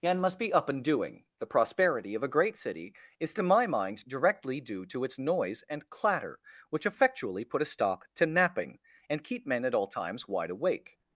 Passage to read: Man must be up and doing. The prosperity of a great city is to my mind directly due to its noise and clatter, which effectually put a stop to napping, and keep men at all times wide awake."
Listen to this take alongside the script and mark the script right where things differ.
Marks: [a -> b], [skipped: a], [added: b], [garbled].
[Man -> And] must be up and doing. The prosperity of a great city is to my mind directly due to its noise and clatter, which effectually put a stop to napping, and keep men at all times wide awake."